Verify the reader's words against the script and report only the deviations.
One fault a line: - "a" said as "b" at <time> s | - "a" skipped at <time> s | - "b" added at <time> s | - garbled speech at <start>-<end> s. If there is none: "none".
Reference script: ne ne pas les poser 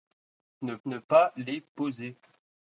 none